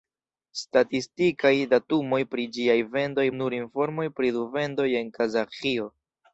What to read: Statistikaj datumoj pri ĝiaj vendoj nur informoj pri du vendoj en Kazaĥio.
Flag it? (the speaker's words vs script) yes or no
no